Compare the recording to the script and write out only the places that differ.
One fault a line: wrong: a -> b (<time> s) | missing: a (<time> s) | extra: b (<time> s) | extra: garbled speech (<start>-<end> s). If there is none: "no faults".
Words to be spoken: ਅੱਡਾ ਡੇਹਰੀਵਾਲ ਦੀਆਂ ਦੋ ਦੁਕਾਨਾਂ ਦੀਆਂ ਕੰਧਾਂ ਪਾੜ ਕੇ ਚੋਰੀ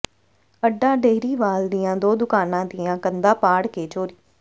no faults